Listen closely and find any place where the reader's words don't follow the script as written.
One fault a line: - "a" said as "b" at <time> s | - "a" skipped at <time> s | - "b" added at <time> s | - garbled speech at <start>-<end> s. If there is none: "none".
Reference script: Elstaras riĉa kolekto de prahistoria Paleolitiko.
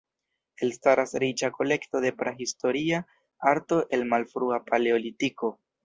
- "arto el Malfrua" added at 3.5 s